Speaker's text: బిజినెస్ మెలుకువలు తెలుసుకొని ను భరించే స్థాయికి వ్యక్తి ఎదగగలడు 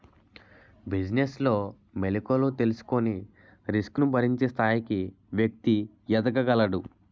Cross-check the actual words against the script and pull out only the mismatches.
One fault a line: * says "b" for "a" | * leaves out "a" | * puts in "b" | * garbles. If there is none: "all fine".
* puts in "లో"
* puts in "రిస్క్"